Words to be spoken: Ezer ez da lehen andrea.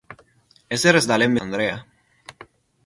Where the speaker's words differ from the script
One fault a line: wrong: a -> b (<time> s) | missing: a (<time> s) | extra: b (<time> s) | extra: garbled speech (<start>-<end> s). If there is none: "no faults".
no faults